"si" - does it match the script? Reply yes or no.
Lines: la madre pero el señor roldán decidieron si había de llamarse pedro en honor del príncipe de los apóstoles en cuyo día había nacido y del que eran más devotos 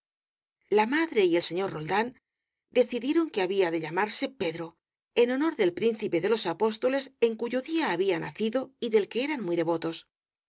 no